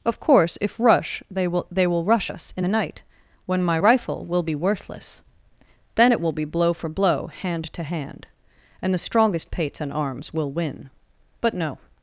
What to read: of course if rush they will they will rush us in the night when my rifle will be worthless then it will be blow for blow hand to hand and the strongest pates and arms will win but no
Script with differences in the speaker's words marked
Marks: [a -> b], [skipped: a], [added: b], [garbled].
of course if rush they will they will rush us in the night when my rifle will be worthless then it will be blow for blow hand to hand and the strongest pates and arms will win but no